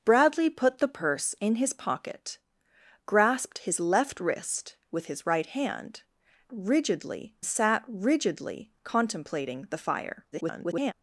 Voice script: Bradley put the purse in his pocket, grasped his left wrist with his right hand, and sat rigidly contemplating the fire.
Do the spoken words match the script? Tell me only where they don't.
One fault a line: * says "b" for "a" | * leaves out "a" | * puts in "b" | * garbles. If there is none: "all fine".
* says "rigidly" for "and"
* garbles